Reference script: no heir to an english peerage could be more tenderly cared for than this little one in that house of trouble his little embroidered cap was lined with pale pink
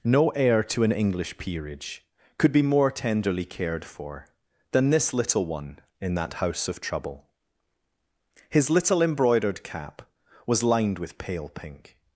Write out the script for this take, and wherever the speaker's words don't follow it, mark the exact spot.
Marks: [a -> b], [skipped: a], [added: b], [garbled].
no heir to an english peerage could be more tenderly cared for than this little one in that house of trouble his little embroidered cap was lined with pale pink